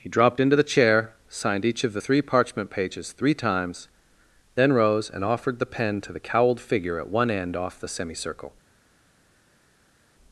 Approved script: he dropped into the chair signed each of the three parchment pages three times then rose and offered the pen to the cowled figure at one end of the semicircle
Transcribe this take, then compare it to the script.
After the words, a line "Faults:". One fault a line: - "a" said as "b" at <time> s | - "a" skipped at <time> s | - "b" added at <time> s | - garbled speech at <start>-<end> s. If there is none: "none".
he dropped into the chair signed each of the three parchment pages three times then rose and offered the pen to the cowled figure at one end off the semicircle
Faults:
- "of" said as "off" at 7.6 s